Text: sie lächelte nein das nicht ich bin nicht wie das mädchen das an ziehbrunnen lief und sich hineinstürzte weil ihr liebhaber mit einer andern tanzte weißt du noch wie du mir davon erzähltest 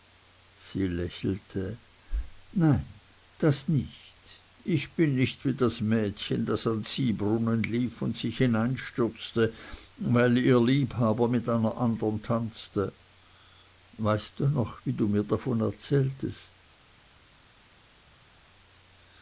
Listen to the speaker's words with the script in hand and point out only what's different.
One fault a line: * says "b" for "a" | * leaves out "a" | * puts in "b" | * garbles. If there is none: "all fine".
all fine